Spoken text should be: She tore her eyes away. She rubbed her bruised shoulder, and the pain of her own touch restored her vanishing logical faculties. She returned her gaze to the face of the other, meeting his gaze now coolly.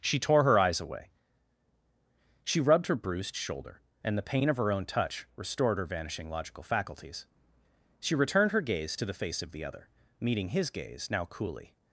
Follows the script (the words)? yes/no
yes